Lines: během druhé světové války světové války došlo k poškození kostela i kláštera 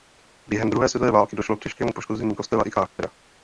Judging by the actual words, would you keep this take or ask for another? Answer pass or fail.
fail